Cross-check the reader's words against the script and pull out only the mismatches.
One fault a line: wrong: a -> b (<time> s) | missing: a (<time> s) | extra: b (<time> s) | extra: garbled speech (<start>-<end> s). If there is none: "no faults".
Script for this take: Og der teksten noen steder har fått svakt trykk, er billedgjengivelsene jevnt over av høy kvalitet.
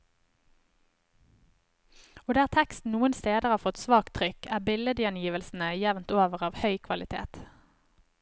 no faults